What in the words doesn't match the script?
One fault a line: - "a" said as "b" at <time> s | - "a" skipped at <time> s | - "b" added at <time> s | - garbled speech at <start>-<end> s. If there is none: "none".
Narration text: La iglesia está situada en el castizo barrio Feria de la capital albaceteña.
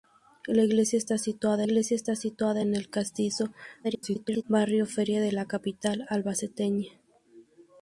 - "iglesia está situada" added at 1.6 s
- garbled speech at 3.8-4.4 s